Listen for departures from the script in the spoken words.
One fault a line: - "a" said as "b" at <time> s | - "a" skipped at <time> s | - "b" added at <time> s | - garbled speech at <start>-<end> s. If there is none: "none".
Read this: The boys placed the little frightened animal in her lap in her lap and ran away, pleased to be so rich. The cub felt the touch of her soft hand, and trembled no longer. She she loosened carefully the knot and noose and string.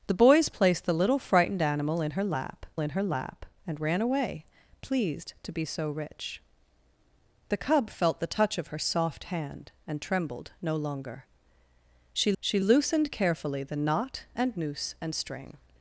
none